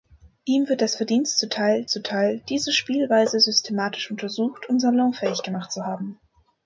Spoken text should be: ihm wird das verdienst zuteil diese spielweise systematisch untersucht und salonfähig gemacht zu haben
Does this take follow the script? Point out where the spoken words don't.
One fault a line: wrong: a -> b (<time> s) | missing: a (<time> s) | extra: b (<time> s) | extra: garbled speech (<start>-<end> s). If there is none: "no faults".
extra: zuteil (1.9 s)